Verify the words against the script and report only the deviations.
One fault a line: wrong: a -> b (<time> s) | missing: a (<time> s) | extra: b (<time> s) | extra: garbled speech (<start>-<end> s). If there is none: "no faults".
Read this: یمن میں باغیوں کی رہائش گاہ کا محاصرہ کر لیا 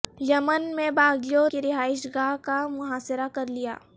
no faults